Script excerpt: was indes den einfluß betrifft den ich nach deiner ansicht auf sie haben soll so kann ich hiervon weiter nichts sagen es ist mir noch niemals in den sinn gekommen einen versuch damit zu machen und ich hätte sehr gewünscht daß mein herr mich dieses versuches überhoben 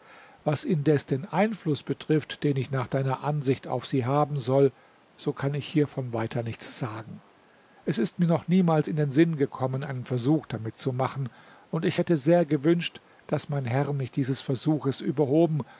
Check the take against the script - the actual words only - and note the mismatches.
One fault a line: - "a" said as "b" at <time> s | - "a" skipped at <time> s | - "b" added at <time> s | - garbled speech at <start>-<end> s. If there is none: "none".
none